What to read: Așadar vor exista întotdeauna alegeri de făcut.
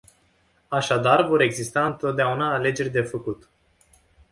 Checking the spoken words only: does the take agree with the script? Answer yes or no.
yes